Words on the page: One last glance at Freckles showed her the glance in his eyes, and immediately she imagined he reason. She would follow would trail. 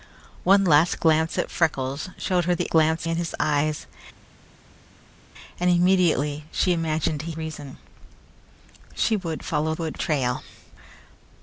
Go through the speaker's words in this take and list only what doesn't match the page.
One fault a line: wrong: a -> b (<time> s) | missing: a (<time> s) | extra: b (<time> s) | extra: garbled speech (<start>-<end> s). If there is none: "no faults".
no faults